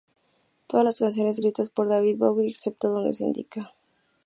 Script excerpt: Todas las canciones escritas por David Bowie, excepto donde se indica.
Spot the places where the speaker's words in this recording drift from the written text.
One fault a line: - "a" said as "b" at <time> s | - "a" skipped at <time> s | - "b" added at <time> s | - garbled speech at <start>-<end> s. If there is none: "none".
none